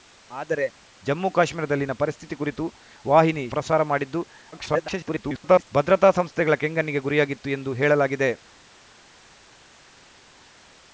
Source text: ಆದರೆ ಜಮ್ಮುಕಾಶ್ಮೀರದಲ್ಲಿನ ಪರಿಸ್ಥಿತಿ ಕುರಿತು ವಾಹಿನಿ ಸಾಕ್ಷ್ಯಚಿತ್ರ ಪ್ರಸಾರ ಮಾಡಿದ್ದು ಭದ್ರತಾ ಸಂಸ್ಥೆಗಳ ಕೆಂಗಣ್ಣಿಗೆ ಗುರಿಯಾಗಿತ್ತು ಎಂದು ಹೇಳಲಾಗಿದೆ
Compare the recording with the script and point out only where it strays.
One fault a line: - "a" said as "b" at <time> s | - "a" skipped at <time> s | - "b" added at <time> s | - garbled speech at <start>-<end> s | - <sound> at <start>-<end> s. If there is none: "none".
- "ಸಾಕ್ಷ್ಯಚಿತ್ರ" skipped at 3.4 s
- garbled speech at 4.5-5.7 s